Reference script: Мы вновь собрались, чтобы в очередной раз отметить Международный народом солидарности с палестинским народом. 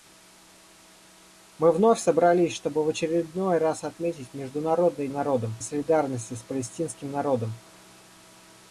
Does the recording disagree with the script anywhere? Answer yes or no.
no